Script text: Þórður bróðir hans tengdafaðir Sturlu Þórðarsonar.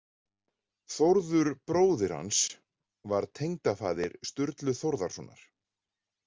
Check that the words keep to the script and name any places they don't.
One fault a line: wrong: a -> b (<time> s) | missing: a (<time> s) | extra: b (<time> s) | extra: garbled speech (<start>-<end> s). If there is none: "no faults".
extra: var (3.1 s)